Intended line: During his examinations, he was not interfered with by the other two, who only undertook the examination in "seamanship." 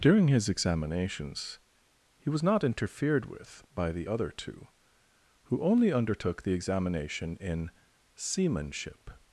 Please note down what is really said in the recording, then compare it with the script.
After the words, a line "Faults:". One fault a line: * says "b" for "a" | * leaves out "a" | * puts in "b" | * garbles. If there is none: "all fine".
During his examinations, he was not interfered with by the other two, who only undertook the examination in "seamanship."
Faults:
all fine